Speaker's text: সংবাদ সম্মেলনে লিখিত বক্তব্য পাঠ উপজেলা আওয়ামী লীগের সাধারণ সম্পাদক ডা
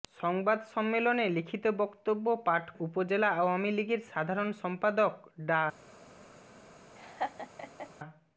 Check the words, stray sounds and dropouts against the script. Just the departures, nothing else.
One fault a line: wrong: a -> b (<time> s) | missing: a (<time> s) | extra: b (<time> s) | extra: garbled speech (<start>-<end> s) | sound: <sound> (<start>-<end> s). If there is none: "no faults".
sound: laugh (7.0-7.9 s)